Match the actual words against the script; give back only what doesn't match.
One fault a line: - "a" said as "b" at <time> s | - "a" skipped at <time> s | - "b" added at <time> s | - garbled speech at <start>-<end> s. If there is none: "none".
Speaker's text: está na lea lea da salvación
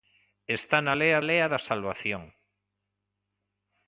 none